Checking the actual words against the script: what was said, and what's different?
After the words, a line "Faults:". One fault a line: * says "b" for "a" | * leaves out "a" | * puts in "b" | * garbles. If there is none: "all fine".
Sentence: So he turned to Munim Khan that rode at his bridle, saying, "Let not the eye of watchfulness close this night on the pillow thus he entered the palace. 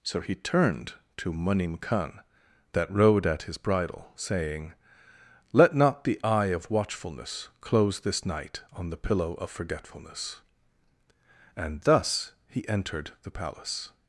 So he turned to Munim Khan that rode at his bridle, saying, "Let not the eye of watchfulness close this night on the pillow of forgetfulness!" And thus he entered the palace.
Faults:
* puts in "of forgetfulness And"